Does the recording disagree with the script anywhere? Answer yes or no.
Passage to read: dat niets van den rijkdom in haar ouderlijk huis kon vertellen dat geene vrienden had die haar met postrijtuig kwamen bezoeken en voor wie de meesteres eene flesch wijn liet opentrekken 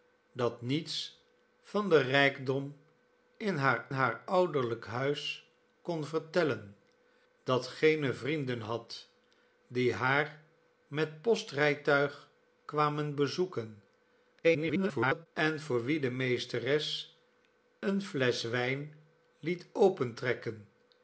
yes